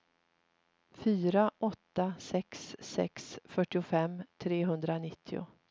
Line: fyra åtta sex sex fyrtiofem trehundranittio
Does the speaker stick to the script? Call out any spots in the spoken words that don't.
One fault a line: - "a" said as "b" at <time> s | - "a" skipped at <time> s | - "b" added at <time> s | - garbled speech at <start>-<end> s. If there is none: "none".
none